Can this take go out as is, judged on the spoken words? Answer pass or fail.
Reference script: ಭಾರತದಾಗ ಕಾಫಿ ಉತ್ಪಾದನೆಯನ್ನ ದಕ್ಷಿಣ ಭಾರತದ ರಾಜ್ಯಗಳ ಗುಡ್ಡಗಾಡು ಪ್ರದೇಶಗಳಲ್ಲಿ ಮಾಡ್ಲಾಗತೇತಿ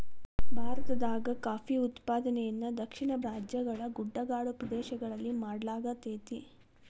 fail